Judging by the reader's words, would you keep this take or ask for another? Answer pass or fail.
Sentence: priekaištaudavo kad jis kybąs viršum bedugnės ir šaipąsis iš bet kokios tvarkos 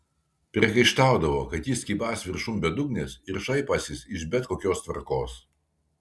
pass